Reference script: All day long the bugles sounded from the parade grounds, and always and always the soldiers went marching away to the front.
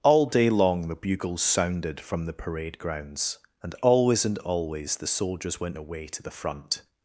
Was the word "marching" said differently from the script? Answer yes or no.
yes